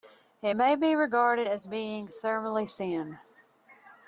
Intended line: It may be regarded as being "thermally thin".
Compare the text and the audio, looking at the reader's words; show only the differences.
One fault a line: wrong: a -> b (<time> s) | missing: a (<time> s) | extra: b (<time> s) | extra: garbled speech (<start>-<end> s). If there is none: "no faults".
no faults